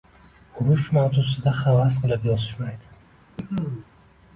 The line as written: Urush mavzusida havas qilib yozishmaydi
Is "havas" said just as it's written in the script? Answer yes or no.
yes